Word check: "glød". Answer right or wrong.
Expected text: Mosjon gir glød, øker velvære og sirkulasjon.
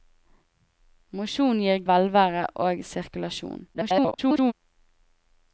wrong